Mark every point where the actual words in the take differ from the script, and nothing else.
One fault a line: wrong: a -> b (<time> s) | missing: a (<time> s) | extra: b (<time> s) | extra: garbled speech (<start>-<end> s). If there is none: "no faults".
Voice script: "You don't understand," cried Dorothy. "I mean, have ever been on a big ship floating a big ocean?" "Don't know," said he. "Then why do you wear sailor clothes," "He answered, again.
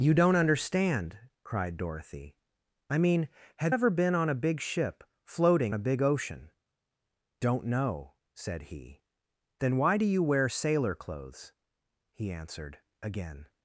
no faults